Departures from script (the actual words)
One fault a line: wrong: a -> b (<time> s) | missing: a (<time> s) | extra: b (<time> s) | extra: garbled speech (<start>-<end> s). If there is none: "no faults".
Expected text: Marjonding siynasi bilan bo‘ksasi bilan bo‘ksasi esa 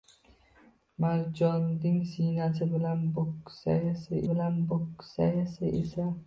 no faults